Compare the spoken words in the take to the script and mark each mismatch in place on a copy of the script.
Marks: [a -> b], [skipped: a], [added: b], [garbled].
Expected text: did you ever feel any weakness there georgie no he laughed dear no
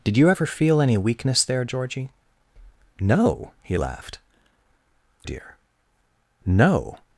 did you ever feel any weakness there georgie no he laughed dear no